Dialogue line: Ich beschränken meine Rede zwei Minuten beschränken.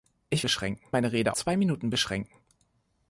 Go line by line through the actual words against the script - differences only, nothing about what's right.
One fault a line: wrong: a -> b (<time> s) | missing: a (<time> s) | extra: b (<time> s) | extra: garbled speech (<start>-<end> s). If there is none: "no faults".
no faults